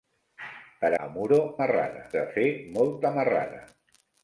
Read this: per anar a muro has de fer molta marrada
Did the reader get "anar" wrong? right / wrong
wrong